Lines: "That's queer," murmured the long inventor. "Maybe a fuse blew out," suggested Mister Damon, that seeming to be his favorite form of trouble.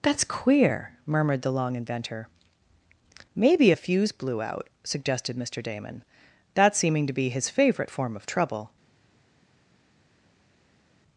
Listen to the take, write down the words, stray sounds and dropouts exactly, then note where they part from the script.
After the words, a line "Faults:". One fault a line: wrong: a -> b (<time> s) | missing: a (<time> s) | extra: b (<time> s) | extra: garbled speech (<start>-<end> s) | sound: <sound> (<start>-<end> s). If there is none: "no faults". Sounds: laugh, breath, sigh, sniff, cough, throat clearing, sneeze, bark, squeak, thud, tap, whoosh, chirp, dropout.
"That's queer," murmured the long inventor. "Maybe a fuse blew out," suggested Mister Damon, that seeming to be his favorite form of trouble.
Faults:
no faults